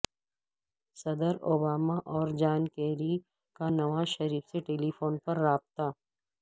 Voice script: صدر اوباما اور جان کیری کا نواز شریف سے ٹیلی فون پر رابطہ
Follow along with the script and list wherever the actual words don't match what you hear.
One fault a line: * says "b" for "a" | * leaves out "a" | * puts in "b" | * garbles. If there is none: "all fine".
all fine